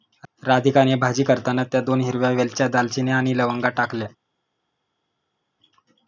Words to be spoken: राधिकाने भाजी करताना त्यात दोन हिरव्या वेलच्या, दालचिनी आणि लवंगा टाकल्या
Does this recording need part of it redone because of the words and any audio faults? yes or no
no